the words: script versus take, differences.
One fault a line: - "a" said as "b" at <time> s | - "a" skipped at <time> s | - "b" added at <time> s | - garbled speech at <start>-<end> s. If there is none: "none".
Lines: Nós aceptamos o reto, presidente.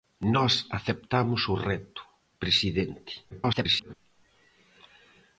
- garbled speech at 3.3-3.9 s